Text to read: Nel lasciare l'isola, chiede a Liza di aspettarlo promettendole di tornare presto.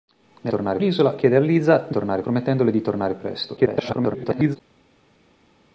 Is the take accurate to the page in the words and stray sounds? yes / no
no